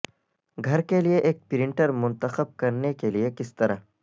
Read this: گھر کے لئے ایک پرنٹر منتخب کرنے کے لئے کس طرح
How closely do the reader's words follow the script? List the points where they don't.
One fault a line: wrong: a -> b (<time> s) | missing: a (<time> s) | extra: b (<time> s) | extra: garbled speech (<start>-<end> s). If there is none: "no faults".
no faults